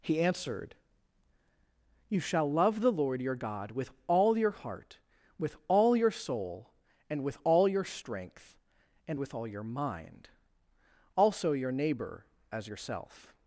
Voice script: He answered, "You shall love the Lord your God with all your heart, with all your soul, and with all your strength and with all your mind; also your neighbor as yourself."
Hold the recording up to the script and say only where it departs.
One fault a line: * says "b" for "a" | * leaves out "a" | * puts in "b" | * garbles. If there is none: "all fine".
all fine